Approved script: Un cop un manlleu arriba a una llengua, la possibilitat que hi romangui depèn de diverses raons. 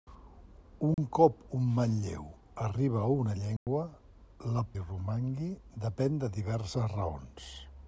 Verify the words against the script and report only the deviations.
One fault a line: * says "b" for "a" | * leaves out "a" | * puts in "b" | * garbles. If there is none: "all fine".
* leaves out "possibilitat que"